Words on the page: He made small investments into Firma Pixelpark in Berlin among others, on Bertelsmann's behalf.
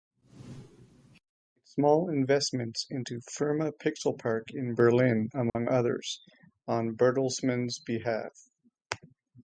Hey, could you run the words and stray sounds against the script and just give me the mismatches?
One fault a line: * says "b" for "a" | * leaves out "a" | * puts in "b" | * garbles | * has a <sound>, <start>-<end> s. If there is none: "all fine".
* has a dropout, 5.5-5.6 s